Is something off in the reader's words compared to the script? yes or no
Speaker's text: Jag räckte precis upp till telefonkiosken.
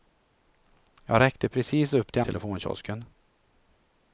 no